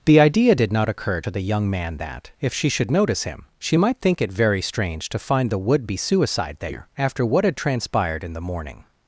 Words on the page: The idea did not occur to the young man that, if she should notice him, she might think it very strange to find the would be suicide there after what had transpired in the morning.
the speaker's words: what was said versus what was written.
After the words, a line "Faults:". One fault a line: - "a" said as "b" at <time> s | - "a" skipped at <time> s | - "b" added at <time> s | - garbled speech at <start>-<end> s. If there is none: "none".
The idea did not occur to the young man that, if she should notice him, she might think it very strange to find the would be suicide there after what had transpired in the morning.
Faults:
none